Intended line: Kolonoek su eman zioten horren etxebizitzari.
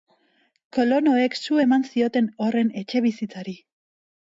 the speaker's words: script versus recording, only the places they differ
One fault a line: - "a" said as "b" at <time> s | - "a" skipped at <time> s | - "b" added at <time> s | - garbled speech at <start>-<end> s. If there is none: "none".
none